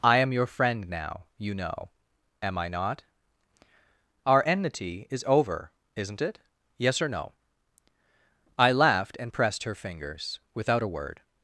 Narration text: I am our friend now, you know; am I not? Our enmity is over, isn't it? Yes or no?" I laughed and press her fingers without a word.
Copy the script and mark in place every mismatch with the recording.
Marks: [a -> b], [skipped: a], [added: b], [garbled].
I am [our -> your] friend now, you know; am I not? Our enmity is over, isn't it? Yes or no?" I laughed and [press -> pressed] her fingers without a word.